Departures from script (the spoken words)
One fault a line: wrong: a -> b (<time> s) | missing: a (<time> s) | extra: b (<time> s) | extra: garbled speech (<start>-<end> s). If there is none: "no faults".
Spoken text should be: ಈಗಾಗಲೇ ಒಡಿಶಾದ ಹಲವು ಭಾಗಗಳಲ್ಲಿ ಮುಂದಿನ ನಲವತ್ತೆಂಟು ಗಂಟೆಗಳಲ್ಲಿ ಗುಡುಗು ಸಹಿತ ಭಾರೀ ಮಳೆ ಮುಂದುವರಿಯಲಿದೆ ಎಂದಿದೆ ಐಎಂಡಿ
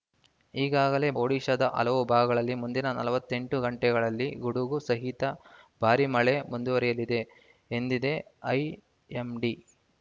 no faults